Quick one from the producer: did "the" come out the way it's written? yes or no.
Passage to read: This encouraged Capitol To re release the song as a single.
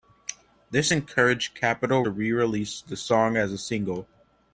yes